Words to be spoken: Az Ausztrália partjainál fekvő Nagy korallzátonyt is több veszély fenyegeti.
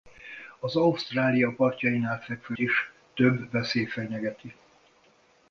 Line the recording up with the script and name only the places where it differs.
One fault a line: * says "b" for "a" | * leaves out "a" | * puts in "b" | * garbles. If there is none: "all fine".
* leaves out "Nagy korallzátonyt"